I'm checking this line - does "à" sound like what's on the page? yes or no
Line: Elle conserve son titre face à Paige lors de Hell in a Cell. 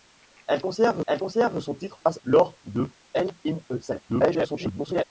no